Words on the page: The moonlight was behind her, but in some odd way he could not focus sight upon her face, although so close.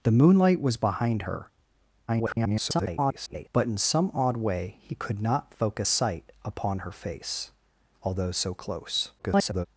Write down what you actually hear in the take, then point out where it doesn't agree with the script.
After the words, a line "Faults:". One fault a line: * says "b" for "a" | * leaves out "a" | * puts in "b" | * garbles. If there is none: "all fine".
The moonlight was behind her, [garbled] but in some odd way he could not focus sight upon her face, although so close. [garbled]
Faults:
* garbles
* garbles